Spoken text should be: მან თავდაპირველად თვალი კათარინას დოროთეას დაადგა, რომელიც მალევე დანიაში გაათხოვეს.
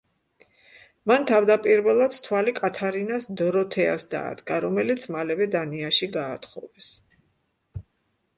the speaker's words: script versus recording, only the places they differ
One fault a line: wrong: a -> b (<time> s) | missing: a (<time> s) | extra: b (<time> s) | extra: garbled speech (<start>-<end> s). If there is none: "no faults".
no faults